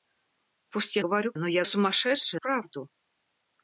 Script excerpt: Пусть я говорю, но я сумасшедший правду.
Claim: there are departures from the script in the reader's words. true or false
false